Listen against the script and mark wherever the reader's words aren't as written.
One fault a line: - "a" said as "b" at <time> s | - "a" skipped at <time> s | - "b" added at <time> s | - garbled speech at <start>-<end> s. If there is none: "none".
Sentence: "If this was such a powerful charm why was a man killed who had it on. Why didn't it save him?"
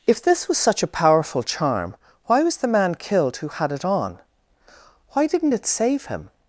- "a" said as "the" at 2.6 s